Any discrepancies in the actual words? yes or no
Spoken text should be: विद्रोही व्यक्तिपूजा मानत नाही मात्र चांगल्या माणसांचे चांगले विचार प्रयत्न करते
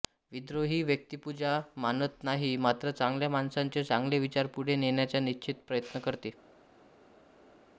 yes